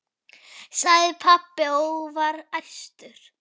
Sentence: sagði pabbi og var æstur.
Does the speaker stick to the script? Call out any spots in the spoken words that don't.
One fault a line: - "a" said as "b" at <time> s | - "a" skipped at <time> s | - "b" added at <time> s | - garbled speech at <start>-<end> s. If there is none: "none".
none